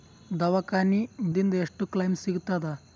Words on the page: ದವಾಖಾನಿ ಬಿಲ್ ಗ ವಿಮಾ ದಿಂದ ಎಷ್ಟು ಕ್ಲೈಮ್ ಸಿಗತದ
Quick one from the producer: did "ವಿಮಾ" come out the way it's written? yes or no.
no